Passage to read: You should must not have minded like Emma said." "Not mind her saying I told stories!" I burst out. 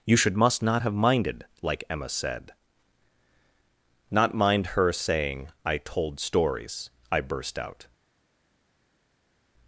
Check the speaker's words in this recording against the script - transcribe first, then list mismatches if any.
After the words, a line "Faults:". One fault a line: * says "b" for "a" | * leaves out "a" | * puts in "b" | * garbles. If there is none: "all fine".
You should must not have minded like Emma said." "Not mind her saying I told stories!" I burst out.
Faults:
all fine